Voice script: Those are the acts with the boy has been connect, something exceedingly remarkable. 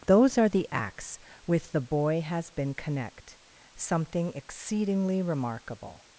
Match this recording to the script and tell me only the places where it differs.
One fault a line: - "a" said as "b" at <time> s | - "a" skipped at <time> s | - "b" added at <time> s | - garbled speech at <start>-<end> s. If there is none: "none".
none